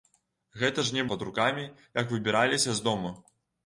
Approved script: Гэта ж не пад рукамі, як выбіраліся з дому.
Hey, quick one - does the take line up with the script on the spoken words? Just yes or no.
yes